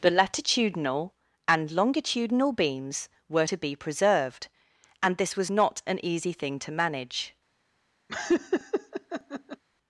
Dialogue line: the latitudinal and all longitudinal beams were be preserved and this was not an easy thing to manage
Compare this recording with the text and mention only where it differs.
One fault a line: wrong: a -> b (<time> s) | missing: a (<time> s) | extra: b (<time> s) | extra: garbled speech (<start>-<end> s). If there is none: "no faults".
missing: all (1.7 s)
extra: to (3.4 s)